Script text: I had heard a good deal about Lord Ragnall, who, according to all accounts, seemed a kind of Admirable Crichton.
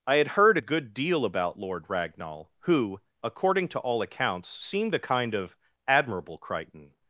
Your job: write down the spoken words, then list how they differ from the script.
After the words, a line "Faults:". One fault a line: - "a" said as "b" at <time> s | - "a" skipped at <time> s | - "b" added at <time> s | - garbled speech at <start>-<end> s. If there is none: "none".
I had heard a good deal about Lord Ragnall, who, according to all accounts, seemed a kind of Admirable Crichton.
Faults:
none